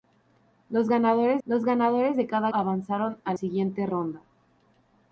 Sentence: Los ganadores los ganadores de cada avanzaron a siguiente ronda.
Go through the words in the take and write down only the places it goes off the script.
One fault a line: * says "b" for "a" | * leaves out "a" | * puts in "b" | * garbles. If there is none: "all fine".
all fine